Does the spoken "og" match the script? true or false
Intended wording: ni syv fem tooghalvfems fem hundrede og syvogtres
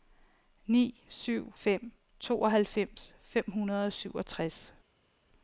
true